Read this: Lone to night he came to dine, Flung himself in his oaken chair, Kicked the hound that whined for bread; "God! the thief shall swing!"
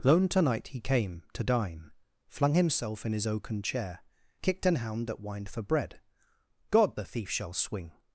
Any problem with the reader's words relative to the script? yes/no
yes